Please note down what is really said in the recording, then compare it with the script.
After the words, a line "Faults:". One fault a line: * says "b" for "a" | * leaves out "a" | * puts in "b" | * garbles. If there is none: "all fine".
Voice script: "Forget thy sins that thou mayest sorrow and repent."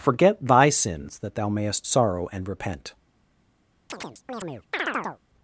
"Forget thy sins that thou mayest sorrow and repent."
Faults:
all fine